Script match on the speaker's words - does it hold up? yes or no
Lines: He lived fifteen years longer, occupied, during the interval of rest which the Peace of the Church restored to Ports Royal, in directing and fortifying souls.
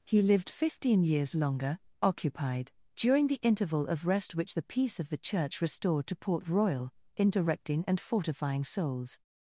no